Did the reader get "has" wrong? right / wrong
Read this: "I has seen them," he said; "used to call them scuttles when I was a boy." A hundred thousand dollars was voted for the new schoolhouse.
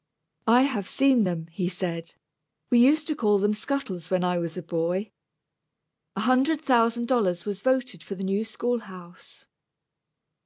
wrong